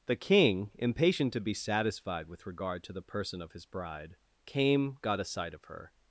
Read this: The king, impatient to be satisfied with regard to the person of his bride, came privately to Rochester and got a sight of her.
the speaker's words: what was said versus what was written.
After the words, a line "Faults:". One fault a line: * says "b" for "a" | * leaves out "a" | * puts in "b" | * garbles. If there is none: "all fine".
The king, impatient to be satisfied with regard to the person of his bride, came got a sight of her.
Faults:
* leaves out "privately to Rochester and"